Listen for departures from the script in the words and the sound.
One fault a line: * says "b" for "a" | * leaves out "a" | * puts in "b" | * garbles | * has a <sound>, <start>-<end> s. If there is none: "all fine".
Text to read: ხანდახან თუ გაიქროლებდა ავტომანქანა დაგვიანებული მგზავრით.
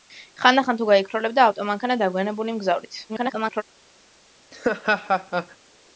* garbles
* has a laugh, 4.5-5.6 s